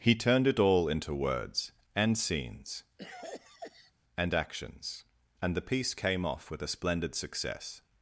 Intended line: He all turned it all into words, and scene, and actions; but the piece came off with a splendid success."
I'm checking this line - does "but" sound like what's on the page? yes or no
no